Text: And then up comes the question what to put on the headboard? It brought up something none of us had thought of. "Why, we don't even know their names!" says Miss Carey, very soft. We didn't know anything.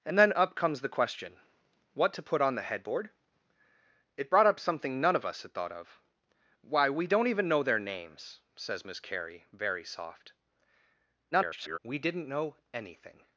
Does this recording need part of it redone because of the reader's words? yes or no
yes